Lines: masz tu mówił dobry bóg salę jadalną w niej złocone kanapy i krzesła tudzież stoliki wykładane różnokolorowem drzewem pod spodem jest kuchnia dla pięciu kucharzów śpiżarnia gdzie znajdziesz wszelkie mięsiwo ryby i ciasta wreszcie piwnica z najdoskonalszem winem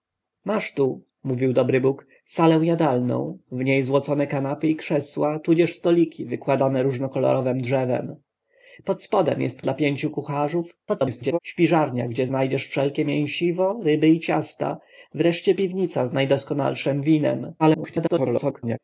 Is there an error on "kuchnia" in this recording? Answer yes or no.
yes